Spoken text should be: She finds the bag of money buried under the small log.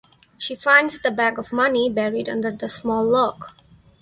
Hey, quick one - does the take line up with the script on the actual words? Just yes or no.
yes